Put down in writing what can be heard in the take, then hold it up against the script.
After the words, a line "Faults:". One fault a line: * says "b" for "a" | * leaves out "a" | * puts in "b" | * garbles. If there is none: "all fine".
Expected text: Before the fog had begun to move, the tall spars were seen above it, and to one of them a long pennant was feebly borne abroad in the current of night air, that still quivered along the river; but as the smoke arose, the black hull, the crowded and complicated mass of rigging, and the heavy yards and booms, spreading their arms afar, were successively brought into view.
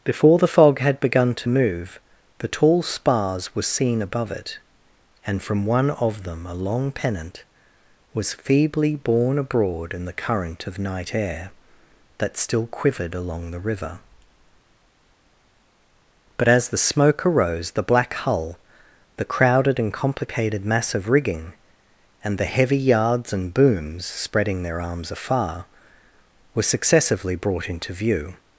Before the fog had begun to move, the tall spars were seen above it, and from one of them a long pennant was feebly borne abroad in the current of night air, that still quivered along the river; but as the smoke arose, the black hull, the crowded and complicated mass of rigging, and the heavy yards and booms, spreading their arms afar, were successively brought into view.
Faults:
* says "from" for "to"